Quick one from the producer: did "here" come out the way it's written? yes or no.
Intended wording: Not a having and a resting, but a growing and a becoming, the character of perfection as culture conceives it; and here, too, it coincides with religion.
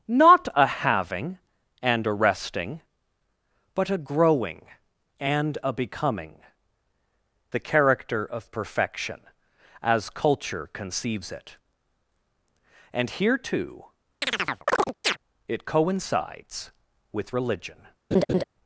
yes